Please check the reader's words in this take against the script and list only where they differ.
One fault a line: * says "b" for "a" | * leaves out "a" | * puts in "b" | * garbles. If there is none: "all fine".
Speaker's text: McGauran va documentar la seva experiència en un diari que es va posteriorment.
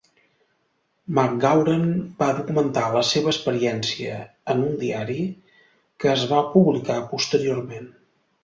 * puts in "publicar"